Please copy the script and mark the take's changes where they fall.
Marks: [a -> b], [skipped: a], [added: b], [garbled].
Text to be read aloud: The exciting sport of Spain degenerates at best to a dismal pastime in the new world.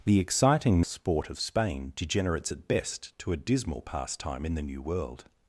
The exciting sport of Spain degenerates at best to a dismal pastime in the new world.